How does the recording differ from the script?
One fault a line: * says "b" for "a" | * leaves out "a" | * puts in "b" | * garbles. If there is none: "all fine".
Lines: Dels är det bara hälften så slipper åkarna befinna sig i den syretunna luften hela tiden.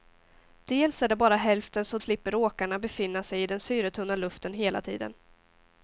all fine